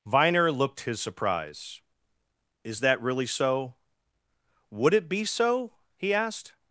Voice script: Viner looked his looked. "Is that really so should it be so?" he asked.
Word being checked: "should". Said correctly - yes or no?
no